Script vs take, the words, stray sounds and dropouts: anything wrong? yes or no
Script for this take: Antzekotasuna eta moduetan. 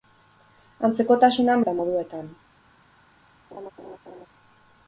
yes